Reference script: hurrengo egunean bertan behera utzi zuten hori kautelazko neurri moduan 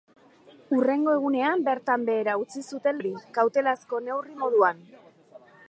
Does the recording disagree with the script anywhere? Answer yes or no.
no